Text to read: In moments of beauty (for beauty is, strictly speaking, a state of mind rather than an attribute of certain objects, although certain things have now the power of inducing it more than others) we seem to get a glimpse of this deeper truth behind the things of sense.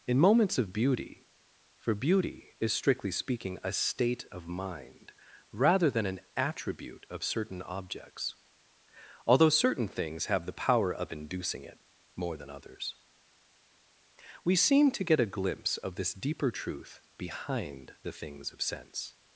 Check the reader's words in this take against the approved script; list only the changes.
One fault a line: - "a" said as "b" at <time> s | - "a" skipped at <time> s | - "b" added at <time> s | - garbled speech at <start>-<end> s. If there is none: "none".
- "now" skipped at 10.5 s